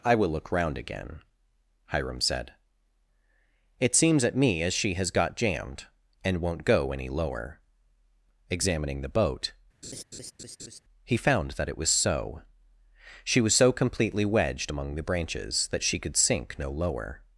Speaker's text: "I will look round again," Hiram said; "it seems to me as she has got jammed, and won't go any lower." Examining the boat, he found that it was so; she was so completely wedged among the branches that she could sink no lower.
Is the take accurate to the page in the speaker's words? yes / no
no